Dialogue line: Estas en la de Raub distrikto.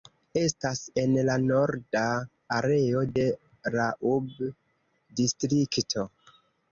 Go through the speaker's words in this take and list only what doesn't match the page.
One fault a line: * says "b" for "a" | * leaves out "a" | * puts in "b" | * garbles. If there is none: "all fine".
* puts in "norda areo"